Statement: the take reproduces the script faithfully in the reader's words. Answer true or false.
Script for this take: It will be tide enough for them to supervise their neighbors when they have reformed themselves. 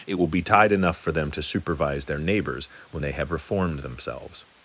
true